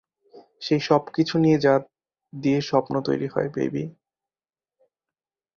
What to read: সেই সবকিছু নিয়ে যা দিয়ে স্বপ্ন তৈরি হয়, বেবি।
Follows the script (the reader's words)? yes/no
yes